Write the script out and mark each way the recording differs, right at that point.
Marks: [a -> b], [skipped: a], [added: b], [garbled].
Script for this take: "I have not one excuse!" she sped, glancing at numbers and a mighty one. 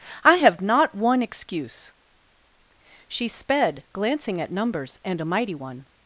"I have not one excuse!" she sped, glancing at numbers and a mighty one.